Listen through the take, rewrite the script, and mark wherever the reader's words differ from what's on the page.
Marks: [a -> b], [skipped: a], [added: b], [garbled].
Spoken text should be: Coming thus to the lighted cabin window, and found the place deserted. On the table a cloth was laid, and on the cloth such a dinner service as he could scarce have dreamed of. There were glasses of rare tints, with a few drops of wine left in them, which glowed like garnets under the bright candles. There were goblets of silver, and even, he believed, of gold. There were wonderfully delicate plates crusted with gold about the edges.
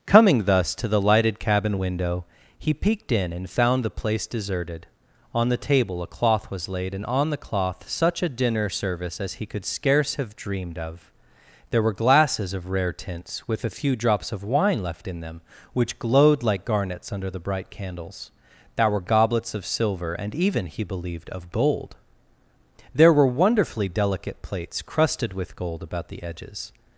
Coming thus to the lighted cabin window, [added: he peeked in] and found the place deserted. On the table a cloth was laid, and on the cloth such a dinner service as he could scarce have dreamed of. There were glasses of rare tints, with a few drops of wine left in them, which glowed like garnets under the bright candles. There were goblets of silver, and even, he believed, of gold. There were wonderfully delicate plates crusted with gold about the edges.